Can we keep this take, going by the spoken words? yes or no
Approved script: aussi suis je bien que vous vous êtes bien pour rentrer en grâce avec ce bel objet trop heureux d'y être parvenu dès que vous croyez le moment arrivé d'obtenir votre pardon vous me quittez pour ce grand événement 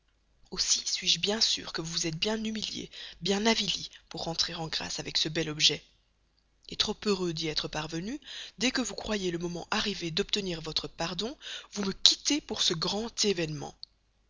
no